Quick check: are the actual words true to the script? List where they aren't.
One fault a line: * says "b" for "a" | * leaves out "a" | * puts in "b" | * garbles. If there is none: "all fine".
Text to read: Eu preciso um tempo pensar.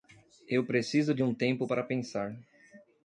* puts in "de"
* puts in "para"